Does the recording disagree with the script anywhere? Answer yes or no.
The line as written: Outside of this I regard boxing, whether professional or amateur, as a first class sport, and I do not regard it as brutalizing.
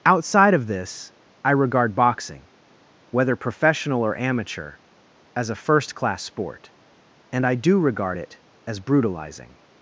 yes